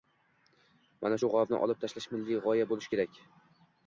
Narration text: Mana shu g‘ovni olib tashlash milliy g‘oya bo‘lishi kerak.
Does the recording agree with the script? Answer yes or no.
yes